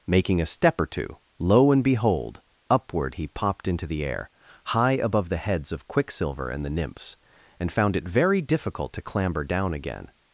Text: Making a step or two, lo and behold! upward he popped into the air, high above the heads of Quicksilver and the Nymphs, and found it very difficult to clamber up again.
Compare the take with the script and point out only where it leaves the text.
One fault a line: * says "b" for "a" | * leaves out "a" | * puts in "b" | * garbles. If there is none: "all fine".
* says "down" for "up"